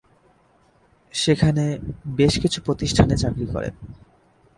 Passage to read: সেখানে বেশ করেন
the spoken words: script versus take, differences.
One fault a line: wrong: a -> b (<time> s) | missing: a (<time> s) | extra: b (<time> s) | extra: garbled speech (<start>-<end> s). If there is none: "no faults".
extra: কিছু প্রতিষ্ঠানে চাকরি (2.4 s)